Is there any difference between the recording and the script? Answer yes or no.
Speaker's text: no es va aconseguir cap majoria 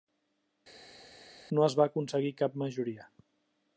no